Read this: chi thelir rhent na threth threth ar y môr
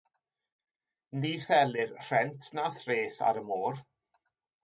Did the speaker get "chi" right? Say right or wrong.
wrong